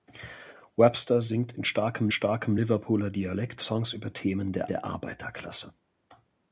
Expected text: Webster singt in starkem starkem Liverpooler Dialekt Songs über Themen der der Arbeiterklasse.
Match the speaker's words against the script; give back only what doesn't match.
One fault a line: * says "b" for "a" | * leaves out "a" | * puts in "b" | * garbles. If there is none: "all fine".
all fine